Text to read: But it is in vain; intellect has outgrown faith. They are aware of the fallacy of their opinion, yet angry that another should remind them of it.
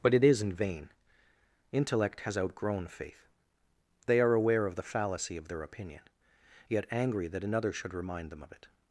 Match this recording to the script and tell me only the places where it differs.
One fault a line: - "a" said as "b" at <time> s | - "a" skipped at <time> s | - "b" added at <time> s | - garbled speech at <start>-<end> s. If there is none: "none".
none